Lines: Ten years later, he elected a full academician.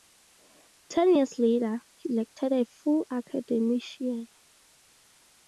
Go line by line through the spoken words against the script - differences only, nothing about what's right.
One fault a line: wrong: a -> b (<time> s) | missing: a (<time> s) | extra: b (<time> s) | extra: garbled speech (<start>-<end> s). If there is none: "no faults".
no faults